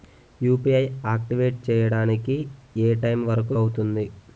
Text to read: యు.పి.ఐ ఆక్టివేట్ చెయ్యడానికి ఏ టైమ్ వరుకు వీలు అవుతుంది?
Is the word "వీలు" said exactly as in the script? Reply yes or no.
no